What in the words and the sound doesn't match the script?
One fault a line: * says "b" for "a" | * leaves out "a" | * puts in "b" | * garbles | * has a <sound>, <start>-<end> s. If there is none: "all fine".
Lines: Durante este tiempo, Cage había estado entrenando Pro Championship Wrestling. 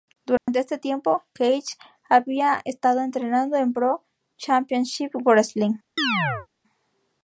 * has a dropout, 0.4-0.5 s
* puts in "en"
* has a chirp, 6.0-6.5 s